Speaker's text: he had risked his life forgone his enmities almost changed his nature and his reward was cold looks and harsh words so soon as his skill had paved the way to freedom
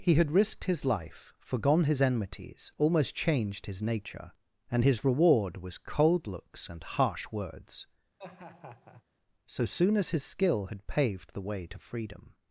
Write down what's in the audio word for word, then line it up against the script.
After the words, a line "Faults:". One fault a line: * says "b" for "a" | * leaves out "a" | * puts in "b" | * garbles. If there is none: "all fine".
he had risked his life forgone his enmities almost changed his nature and his reward was cold looks and harsh words so soon as his skill had paved the way to freedom
Faults:
all fine